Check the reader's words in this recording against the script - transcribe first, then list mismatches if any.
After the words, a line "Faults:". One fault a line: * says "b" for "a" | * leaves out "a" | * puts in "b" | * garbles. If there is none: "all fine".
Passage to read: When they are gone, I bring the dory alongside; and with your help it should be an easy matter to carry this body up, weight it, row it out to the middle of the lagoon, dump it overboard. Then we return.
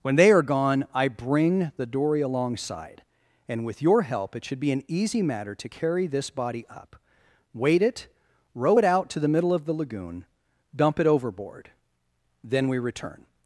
When they are gone, I bring the dory alongside; and with your help it should be an easy matter to carry this body up, weight it, row it out to the middle of the lagoon, dump it overboard. Then we return.
Faults:
all fine